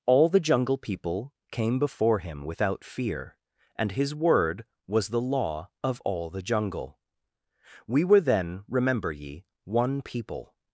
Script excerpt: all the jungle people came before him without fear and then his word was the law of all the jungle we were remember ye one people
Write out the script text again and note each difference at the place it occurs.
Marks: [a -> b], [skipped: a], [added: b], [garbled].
all the jungle people came before him without fear and [skipped: then] his word was the law of all the jungle we were [added: then] remember ye one people